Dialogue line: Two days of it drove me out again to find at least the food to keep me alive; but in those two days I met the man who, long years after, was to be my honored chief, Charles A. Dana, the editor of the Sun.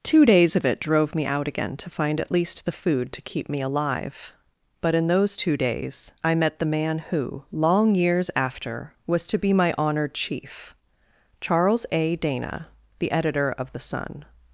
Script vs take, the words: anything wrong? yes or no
no